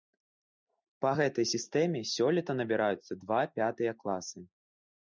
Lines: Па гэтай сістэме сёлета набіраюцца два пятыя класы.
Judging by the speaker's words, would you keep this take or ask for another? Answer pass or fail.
pass